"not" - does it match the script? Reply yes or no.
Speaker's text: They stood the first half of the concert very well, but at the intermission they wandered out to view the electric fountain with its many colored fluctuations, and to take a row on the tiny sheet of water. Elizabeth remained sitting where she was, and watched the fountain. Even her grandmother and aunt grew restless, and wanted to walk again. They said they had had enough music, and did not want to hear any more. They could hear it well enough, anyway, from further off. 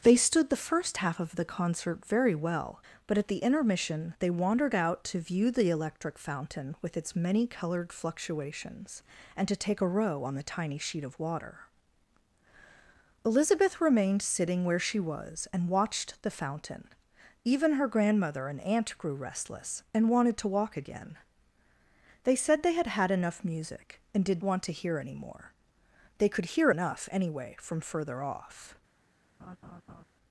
no